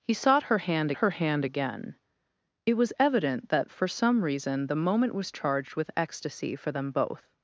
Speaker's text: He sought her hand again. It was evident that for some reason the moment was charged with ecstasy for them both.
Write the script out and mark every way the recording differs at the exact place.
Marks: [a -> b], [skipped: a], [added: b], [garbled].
He sought her hand [added: her hand] again. It was evident that for some reason the moment was charged with ecstasy for them both.